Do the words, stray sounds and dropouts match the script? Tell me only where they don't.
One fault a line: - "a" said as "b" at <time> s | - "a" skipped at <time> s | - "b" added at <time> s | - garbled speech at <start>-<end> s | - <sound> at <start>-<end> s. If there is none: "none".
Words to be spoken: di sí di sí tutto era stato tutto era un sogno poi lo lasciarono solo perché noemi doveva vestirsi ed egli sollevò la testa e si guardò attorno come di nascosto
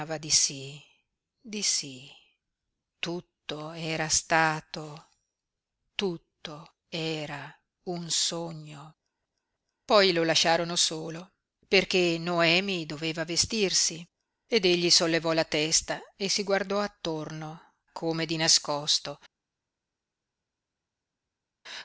none